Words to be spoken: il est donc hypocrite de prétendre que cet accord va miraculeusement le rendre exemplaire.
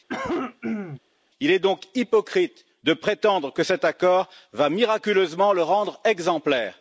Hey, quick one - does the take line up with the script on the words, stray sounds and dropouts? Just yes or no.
no